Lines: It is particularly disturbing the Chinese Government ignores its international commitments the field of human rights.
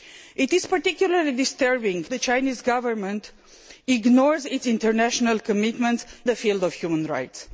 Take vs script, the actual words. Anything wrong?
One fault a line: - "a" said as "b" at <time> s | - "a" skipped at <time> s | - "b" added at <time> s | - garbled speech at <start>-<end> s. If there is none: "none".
none